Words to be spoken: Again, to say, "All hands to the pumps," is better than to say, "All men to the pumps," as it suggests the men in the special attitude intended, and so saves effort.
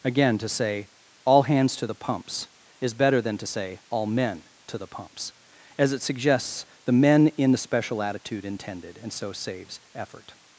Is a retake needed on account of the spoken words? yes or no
no